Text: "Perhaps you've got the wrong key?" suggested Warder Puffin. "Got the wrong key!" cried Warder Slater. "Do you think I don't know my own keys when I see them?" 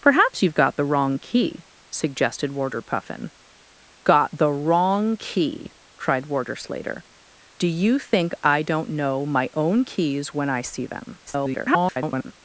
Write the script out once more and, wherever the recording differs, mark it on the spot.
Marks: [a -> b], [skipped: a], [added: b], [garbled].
"Perhaps you've got the wrong key?" suggested Warder Puffin. "Got the wrong key!" cried Warder Slater. "Do you think I don't know my own keys when I see them?" [garbled]